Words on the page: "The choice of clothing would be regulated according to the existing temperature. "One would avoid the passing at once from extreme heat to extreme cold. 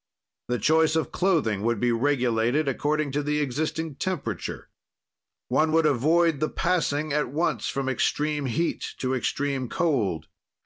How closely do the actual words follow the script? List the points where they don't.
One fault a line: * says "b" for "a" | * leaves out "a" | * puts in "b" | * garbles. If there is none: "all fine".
all fine